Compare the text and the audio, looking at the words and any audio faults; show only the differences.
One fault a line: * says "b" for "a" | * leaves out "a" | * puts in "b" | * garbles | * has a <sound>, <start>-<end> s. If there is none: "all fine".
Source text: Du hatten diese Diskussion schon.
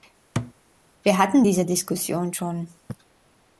* has a thud, 0.4-0.5 s
* says "Wir" for "Du"